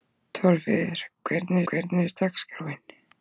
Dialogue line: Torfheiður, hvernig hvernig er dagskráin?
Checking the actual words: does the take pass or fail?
pass